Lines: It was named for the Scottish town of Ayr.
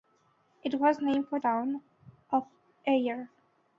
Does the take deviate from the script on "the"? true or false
true